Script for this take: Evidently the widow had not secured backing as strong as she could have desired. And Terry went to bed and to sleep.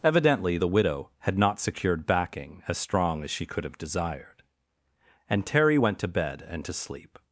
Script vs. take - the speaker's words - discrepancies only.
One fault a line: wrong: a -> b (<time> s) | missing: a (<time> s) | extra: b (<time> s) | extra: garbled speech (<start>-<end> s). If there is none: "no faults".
no faults